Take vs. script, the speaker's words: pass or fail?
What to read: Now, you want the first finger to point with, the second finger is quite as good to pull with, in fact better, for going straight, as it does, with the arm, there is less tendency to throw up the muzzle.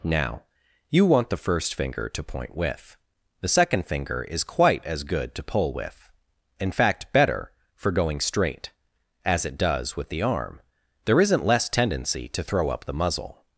fail